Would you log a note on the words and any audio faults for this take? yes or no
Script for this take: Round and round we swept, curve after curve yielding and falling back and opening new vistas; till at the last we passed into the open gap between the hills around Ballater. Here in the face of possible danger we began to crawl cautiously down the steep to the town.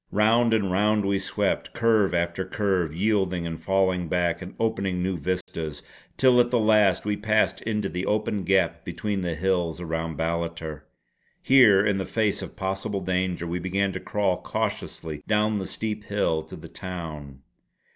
yes